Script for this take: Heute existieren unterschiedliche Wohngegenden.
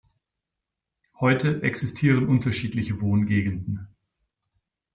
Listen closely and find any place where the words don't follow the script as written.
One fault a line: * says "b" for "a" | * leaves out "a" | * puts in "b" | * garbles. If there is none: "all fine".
all fine